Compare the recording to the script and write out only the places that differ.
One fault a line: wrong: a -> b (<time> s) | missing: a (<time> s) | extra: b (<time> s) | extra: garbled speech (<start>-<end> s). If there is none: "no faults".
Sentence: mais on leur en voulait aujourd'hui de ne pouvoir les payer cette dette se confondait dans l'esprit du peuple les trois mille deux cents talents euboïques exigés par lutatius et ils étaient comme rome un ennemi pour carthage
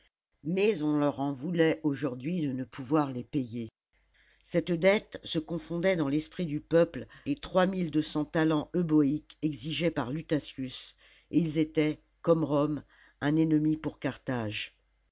no faults